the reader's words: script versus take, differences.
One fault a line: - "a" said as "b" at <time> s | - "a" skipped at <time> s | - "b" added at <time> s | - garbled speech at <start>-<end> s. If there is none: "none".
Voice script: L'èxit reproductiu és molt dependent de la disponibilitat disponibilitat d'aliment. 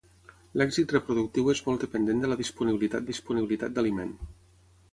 none